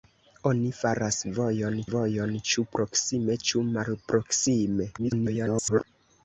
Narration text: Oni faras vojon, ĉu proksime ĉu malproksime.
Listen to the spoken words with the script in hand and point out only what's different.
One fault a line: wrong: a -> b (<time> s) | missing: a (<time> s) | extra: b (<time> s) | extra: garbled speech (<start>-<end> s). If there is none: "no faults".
extra: vojon (1.9 s)
extra: garbled speech (5.0-5.8 s)